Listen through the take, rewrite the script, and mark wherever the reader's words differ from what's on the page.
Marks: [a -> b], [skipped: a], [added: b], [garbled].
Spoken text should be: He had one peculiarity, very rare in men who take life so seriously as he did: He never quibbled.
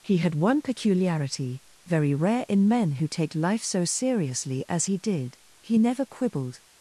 He had one peculiarity, very rare in men who take life so seriously as he did: He never quibbled.